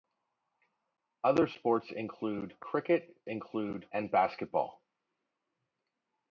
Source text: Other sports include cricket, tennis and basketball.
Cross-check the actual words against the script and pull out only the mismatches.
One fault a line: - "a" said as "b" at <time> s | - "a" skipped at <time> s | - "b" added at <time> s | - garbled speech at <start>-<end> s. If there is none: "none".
- "tennis" said as "include" at 3.2 s